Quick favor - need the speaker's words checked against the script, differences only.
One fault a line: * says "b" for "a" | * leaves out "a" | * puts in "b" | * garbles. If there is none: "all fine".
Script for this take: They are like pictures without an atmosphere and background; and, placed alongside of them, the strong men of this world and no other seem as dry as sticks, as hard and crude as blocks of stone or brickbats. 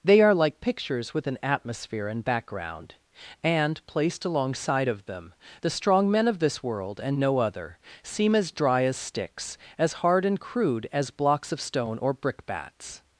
* says "with" for "without"